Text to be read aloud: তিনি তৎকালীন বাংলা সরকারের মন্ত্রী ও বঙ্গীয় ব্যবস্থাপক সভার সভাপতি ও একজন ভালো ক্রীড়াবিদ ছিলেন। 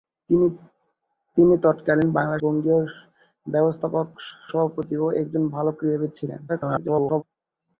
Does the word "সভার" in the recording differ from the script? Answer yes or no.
yes